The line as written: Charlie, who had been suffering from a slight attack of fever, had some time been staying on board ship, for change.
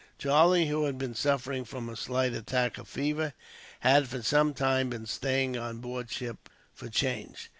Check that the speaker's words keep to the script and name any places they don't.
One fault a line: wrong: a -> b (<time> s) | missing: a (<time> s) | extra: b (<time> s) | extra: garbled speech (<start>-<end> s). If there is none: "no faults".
extra: for (4.1 s)